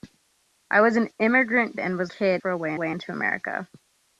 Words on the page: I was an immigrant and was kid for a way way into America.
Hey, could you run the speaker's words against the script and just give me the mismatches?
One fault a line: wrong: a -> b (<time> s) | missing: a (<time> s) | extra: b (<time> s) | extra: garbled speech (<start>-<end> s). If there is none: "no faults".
no faults